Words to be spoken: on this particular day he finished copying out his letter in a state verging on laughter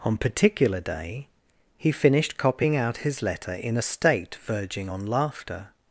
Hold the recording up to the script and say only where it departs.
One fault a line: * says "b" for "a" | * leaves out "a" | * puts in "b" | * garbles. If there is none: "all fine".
* leaves out "this"